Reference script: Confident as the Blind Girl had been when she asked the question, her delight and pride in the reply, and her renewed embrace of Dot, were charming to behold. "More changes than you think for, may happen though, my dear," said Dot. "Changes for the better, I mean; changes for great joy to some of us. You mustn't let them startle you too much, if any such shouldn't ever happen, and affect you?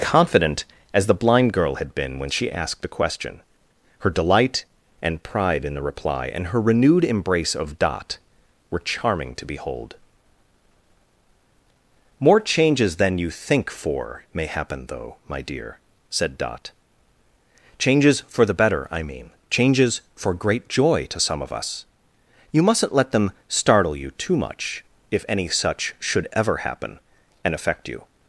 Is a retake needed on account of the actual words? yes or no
yes